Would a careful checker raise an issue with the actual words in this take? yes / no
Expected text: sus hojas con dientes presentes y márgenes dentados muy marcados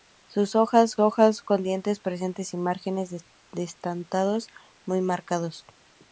yes